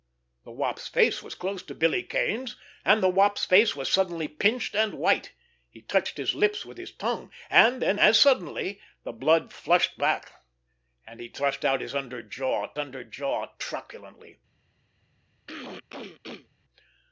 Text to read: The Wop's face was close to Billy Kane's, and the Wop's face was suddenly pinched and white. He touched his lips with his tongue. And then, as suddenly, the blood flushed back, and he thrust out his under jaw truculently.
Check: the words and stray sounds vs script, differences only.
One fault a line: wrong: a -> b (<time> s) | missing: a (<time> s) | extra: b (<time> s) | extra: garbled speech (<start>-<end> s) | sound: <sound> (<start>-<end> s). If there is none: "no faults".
extra: under jaw (12.8 s)
sound: throat clearing (15.5-16.5 s)